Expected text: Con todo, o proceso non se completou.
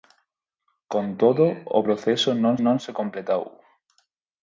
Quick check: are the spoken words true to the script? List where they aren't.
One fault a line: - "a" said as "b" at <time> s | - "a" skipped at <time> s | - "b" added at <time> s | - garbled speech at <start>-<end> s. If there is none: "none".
- "non" added at 2.6 s